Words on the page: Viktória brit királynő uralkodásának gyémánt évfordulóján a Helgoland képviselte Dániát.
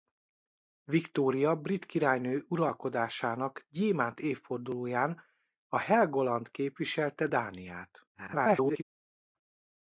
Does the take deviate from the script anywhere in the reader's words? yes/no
yes